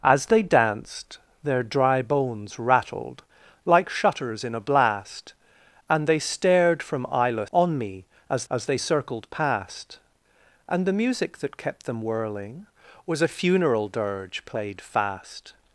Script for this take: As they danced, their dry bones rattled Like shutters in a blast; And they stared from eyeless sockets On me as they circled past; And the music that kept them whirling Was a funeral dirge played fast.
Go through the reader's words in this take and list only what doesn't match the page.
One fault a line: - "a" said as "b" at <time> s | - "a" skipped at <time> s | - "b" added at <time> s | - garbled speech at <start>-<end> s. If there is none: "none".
- "sockets" skipped at 7.5 s
- "as" added at 8.5 s